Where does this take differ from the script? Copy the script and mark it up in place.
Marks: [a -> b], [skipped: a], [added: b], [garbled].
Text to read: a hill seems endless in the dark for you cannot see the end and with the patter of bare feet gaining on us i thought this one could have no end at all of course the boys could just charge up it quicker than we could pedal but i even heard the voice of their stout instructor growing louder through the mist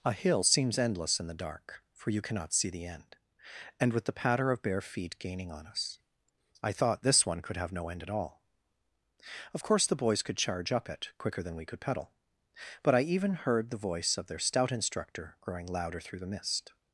a hill seems endless in the dark for you cannot see the end and with the patter of bare feet gaining on us i thought this one could have no end at all of course the boys could [skipped: just] charge up it quicker than we could pedal but i even heard the voice of their stout instructor growing louder through the mist